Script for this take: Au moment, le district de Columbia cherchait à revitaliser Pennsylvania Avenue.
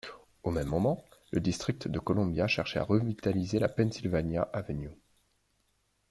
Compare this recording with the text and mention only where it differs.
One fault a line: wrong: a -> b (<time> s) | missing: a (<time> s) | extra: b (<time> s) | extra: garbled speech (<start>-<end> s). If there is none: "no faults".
extra: même (0.5 s)
extra: la (3.6 s)